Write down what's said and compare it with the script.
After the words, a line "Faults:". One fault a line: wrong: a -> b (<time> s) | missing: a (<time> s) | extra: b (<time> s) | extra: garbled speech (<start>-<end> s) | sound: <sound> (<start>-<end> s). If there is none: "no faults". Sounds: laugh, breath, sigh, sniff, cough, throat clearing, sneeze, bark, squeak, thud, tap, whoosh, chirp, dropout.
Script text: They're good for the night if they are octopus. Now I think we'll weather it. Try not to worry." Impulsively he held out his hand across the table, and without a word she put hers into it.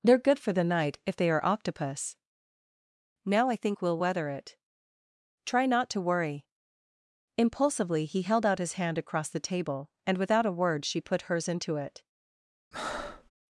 They're good for the night if they are octopus. Now I think we'll weather it. Try not to worry." Impulsively he held out his hand across the table, and without a word she put hers into it.
Faults:
sound: breath (12.7-13.3 s)